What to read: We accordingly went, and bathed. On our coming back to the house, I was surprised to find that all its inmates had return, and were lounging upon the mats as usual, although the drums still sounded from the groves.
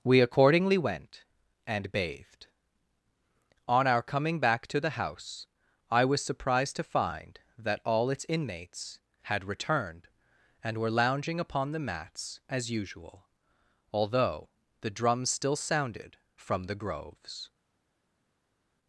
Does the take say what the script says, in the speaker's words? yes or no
no